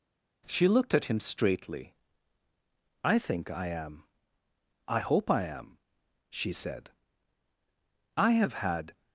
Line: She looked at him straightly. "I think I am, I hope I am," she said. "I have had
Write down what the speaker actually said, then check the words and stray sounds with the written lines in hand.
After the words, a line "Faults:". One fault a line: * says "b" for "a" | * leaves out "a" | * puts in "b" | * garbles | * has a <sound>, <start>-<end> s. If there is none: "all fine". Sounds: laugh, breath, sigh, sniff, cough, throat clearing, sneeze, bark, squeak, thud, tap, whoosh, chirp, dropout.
She looked at him straightly. "I think I am, I hope I am," she said. "I have had
Faults:
all fine